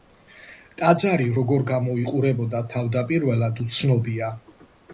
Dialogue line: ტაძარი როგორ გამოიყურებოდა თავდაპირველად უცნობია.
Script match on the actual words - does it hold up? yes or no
yes